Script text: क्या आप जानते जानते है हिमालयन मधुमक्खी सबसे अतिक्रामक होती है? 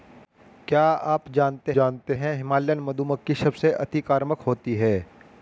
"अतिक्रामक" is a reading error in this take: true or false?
false